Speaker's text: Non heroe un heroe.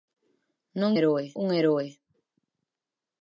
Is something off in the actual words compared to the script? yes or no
no